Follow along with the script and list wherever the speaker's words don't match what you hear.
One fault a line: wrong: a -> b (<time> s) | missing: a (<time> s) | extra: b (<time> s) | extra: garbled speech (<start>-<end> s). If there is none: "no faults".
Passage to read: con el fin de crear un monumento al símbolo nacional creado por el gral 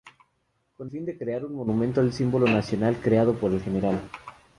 missing: el (0.9 s)